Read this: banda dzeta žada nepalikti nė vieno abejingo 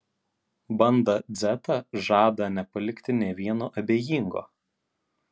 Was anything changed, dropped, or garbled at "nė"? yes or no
no